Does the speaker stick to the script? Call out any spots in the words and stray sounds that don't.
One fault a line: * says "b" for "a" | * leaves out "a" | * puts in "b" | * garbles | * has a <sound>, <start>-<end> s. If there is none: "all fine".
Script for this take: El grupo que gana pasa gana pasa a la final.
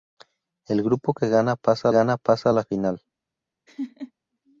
* has a laugh, 3.7-4.1 s